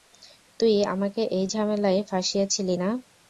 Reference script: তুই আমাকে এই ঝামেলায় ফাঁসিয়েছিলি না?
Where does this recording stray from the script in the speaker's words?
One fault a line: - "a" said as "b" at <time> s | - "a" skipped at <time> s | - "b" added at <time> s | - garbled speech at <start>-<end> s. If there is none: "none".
none